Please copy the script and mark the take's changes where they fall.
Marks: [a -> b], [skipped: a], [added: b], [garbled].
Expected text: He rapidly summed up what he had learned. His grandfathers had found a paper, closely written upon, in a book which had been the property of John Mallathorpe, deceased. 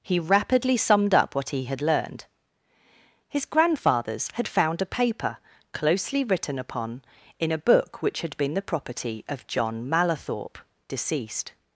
He rapidly summed up what he had learned. His grandfathers had found a paper, closely written upon, in a book which had been the property of John Mallathorpe, deceased.